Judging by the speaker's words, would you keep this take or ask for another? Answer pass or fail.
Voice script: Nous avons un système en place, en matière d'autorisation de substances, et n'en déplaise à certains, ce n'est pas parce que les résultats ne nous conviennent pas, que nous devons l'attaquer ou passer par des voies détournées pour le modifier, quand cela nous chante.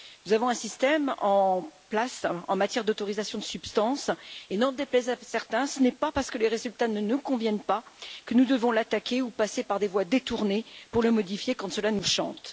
pass